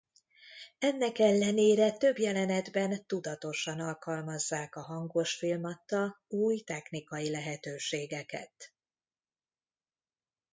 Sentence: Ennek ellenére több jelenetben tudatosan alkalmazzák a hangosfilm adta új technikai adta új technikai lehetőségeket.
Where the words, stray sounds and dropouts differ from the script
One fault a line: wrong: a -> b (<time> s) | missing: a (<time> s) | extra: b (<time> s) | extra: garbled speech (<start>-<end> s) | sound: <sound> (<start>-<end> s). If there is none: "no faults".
missing: adta új technikai (7.3 s)